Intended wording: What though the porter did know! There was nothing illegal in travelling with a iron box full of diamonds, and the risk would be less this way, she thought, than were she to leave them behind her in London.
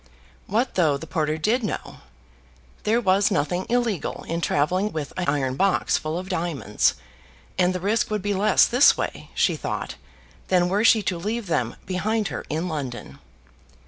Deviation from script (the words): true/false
false